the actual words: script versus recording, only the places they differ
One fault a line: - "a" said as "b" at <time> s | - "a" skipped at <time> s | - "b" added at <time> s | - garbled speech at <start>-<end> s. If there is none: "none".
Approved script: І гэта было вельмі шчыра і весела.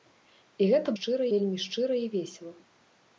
- "было" said as "шчыра" at 1.0 s